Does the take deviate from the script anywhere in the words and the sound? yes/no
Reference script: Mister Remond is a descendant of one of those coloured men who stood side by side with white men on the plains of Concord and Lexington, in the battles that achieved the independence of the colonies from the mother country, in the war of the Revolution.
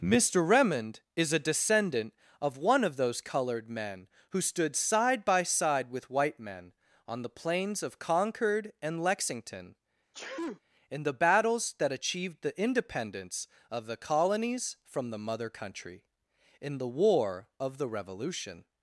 yes